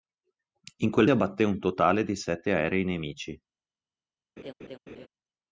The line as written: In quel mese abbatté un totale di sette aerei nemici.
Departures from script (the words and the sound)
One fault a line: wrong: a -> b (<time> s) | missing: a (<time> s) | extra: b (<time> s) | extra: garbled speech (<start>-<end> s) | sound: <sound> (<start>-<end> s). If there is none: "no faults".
missing: mese (1.1 s)
sound: laugh (4.4-5.1 s)